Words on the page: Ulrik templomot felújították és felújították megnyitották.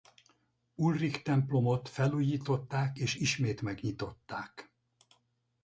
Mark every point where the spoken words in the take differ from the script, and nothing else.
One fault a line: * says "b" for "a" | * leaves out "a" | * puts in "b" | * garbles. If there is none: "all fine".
* says "ismét" for "felújították"